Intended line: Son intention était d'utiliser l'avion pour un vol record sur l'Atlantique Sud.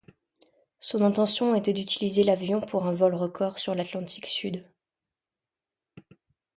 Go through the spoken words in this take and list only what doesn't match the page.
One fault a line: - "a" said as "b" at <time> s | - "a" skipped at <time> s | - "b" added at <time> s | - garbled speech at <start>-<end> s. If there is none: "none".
none